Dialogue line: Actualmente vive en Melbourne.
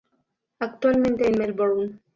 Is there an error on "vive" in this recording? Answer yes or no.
yes